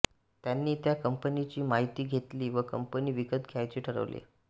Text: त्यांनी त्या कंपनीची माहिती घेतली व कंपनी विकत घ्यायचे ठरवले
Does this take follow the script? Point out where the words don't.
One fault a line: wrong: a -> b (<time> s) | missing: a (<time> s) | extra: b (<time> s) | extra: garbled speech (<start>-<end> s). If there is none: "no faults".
no faults